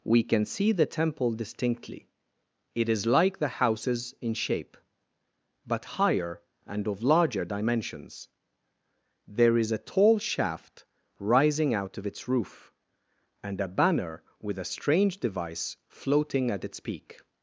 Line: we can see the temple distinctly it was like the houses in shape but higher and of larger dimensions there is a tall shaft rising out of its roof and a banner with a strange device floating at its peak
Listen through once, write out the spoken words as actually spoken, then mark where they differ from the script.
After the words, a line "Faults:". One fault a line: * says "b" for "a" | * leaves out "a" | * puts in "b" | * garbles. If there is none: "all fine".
we can see the temple distinctly it is like the houses in shape but higher and of larger dimensions there is a tall shaft rising out of its roof and a banner with a strange device floating at its peak
Faults:
* says "is" for "was"